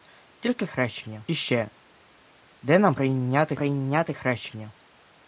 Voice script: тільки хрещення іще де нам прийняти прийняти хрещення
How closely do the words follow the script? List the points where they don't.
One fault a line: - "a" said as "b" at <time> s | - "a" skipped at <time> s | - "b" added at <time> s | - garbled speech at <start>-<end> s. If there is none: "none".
none